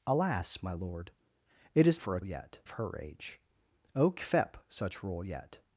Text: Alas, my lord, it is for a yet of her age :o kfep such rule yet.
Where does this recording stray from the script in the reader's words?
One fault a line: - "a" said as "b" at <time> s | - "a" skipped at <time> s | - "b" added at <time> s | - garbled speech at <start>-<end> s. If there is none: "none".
none